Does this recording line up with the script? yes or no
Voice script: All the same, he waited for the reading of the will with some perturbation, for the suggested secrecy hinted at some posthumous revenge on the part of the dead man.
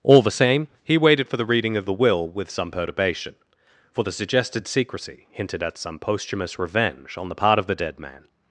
yes